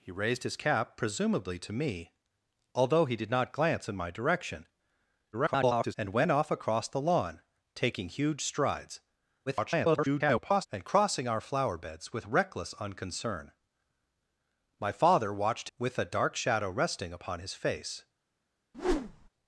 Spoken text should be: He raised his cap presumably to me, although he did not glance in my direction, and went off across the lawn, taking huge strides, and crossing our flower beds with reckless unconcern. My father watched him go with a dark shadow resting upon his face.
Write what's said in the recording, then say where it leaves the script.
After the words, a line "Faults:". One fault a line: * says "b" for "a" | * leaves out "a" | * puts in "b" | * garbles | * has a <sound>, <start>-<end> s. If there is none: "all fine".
He raised his cap presumably to me, although he did not glance in my direction, [garbled] and went off across the lawn, taking huge strides, [garbled] and crossing our flower beds with reckless unconcern. My father watched with a dark shadow resting upon his face.
Faults:
* garbles
* garbles
* leaves out "him go"
* has a whoosh, 18.7-19.3 s